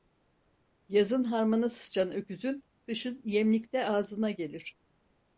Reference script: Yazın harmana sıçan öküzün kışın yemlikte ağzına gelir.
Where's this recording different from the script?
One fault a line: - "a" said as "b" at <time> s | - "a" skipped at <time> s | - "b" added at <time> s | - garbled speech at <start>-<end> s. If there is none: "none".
none